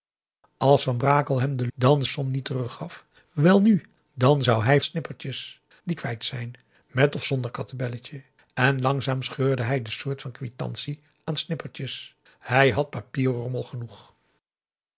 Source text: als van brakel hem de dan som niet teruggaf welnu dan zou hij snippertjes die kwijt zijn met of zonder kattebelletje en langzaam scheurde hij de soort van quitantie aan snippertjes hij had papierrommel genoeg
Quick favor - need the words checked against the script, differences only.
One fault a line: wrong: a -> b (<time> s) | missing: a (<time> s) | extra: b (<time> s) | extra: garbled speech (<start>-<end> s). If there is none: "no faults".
no faults